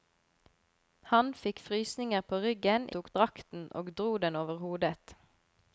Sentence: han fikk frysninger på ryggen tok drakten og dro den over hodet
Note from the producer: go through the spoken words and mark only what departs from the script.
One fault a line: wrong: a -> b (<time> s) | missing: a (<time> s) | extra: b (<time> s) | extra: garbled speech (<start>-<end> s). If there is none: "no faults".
no faults